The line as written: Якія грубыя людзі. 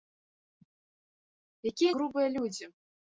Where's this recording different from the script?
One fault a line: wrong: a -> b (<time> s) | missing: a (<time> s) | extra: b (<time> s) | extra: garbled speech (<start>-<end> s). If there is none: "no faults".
no faults